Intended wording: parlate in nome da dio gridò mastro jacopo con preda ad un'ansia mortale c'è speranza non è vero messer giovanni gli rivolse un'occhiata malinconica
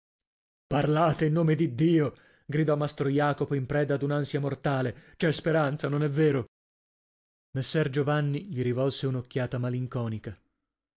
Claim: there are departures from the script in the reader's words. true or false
true